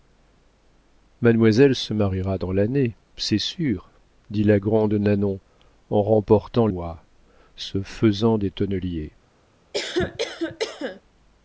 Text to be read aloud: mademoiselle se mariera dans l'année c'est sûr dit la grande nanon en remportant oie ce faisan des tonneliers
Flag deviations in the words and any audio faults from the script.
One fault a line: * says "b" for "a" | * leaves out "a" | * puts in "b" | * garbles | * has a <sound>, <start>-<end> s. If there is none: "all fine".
* has a cough, 9.7-11.0 s